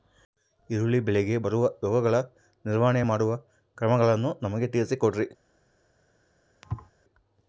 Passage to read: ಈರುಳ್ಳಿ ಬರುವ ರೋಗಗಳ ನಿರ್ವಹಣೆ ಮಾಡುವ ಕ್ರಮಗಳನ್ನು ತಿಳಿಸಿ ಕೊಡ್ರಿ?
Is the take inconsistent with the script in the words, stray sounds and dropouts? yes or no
yes